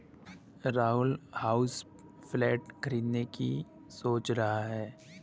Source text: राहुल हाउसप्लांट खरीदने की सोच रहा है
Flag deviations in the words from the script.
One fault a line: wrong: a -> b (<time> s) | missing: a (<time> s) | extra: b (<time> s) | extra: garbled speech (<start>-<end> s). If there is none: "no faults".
no faults